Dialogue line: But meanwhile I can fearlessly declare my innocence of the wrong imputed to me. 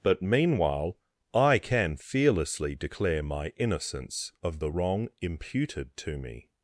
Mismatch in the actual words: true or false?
false